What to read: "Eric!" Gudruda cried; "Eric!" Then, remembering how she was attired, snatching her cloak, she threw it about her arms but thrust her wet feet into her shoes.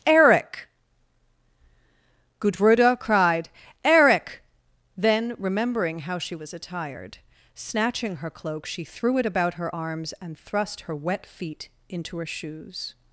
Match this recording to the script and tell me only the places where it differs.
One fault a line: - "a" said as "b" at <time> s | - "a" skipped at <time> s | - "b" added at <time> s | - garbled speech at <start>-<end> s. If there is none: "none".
- "but" said as "and" at 10.2 s